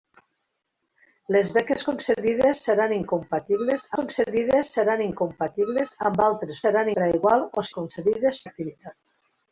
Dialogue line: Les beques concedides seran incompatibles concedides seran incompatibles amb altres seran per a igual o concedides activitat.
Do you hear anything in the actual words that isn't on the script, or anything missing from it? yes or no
no